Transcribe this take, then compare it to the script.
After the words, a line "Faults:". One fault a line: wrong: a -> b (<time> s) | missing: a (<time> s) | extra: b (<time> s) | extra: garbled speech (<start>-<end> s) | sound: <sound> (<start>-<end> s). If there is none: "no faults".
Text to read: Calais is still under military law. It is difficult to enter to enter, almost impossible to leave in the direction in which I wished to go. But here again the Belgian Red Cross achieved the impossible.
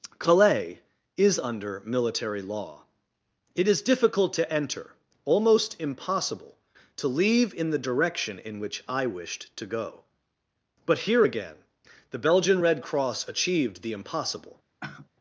Calais is under military law. It is difficult to enter, almost impossible to leave in the direction in which I wished to go. But here again the Belgian Red Cross achieved the impossible.
Faults:
missing: still (1.4 s)
missing: to enter (4.9 s)
sound: sigh (14.8-15.1 s)